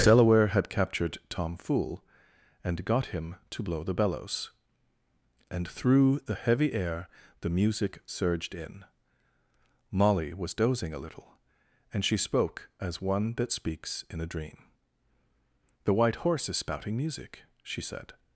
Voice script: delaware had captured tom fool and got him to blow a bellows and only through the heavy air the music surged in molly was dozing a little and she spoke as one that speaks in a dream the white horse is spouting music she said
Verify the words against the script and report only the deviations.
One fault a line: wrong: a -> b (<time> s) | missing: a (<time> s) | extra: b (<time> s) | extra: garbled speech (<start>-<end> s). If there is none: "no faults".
wrong: a -> the (3.8 s)
missing: only (5.7 s)